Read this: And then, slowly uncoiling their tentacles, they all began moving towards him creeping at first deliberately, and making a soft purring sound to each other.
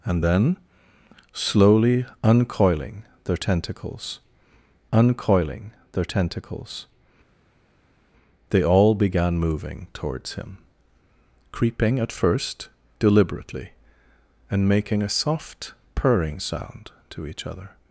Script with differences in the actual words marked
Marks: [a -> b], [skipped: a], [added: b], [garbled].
And then, slowly uncoiling their tentacles, [added: uncoiling their tentacles] they all began moving towards him creeping at first deliberately, and making a soft purring sound to each other.